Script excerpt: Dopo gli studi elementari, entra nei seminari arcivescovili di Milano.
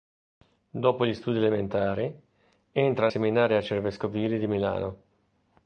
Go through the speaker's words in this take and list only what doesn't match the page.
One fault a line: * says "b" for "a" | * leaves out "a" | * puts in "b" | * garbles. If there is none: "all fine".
* leaves out "nei"